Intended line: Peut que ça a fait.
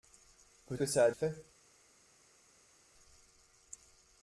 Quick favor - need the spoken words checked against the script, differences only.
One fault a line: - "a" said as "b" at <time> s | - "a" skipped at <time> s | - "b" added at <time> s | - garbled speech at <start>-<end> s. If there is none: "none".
none